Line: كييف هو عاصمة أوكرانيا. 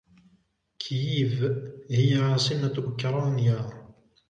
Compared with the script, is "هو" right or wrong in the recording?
wrong